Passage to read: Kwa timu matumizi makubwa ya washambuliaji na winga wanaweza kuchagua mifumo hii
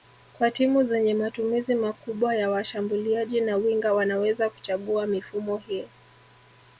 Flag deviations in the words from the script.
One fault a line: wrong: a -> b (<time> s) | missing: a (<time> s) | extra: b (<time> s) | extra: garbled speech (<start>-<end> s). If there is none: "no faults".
extra: zenye (0.8 s)